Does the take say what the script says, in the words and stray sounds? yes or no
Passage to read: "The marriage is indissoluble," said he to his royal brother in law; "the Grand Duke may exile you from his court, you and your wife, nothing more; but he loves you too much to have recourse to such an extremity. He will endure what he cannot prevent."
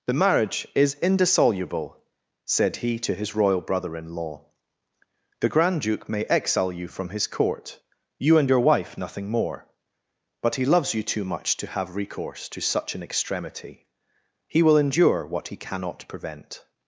yes